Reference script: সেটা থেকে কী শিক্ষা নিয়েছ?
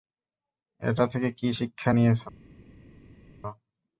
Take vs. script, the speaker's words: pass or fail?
fail